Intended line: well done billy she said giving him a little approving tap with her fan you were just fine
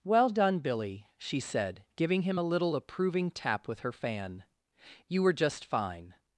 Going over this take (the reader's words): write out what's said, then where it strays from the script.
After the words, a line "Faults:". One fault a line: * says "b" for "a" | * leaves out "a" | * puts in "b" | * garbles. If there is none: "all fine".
well done billy she said giving him a little approving tap with her fan you were just fine
Faults:
all fine